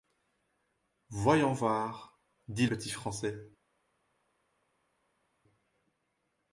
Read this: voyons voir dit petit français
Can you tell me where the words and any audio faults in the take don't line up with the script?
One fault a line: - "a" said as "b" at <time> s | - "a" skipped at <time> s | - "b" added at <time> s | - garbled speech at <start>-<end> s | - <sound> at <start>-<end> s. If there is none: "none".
none